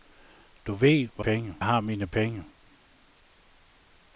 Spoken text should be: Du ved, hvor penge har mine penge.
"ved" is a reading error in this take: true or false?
false